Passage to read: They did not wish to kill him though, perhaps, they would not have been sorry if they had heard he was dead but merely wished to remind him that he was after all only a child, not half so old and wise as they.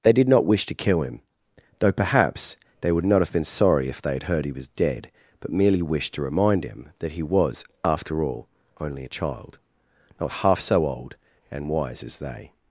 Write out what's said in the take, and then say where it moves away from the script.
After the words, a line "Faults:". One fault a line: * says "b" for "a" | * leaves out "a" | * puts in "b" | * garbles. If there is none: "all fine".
They did not wish to kill him though, perhaps, they would not have been sorry if they had heard he was dead but merely wished to remind him that he was after all only a child, not half so old and wise as they.
Faults:
all fine